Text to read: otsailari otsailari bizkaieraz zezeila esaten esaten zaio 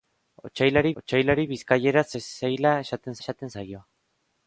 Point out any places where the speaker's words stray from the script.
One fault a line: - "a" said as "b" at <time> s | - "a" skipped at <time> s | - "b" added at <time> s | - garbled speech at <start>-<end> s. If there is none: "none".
none